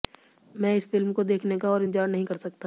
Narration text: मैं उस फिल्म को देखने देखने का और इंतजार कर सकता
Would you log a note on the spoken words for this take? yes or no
yes